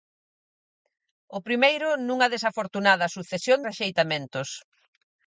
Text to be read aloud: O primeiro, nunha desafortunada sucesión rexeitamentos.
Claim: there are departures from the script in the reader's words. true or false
false